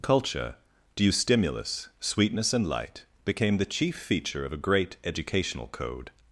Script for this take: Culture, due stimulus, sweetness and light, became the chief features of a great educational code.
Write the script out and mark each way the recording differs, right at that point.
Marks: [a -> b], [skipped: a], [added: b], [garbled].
Culture, due stimulus, sweetness and light, became the chief [features -> feature] of a great educational code.